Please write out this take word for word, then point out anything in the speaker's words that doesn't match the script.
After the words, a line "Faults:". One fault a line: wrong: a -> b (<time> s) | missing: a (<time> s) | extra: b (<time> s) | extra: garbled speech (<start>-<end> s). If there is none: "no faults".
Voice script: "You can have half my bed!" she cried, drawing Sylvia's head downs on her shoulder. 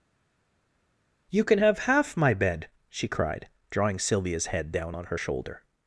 "You can have half my bed!" she cried, drawing Sylvia's head down on her shoulder.
Faults:
wrong: downs -> down (4.7 s)